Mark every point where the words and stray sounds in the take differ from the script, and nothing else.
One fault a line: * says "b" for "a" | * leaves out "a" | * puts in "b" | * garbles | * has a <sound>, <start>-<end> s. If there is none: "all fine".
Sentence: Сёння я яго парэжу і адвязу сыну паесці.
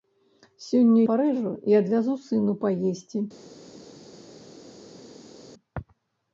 * leaves out "я яго"